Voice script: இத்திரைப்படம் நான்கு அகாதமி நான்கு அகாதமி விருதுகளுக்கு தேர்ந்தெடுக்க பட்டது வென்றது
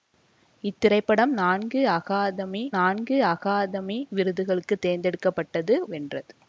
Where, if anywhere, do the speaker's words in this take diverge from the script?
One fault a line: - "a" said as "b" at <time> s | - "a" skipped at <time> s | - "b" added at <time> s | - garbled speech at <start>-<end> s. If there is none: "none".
none